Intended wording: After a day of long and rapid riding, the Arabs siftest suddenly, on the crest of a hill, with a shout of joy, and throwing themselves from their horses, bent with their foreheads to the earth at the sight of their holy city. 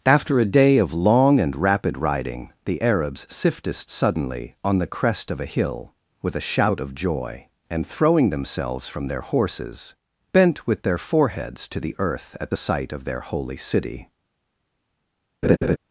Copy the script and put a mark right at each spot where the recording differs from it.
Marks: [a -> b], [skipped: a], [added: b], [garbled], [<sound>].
After a day of long and rapid riding, the Arabs siftest suddenly, on the crest of a hill, with a shout of joy, and throwing themselves from their horses, bent with their foreheads to the earth at the sight of their holy city. [laugh]